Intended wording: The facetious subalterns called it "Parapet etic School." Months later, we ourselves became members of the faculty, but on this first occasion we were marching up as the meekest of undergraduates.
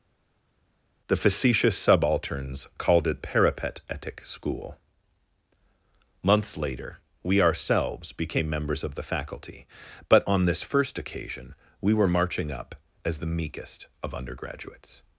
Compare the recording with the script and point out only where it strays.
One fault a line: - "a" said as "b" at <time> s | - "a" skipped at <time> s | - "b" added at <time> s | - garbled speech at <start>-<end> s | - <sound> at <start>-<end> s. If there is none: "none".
none